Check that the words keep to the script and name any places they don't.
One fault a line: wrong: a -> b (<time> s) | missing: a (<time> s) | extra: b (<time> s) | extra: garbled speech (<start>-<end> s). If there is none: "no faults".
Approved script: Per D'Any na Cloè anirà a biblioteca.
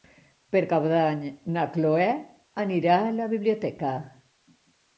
extra: Cap (0.7 s)
extra: la (3.2 s)